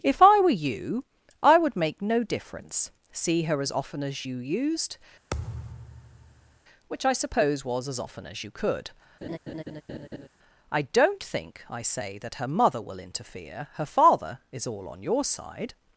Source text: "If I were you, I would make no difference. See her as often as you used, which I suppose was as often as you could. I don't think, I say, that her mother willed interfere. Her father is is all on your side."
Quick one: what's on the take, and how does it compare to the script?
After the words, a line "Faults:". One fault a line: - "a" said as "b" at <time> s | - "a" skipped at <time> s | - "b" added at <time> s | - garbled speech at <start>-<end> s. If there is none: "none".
"If I were you, I would make no difference. See her as often as you used, which I suppose was as often as you could. I don't think, I say, that her mother will interfere. Her father is all on your side."
Faults:
- "willed" said as "will" at 12.8 s
- "is" skipped at 14.7 s